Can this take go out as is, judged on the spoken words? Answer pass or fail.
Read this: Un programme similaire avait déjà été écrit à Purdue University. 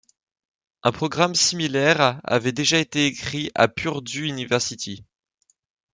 pass